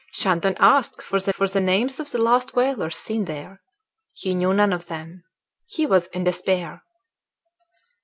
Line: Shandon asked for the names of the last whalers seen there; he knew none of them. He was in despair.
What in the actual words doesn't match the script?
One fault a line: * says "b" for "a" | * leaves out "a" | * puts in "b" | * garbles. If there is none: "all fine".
* puts in "for the"